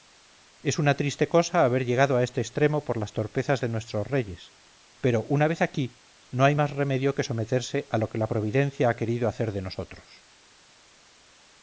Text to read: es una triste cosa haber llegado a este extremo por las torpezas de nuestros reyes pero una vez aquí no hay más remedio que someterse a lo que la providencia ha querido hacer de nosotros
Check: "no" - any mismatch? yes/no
no